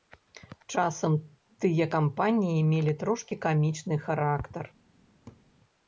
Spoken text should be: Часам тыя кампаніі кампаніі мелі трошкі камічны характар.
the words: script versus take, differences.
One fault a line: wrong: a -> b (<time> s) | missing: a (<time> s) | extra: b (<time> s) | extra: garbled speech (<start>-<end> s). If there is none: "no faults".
missing: кампаніі (2.7 s)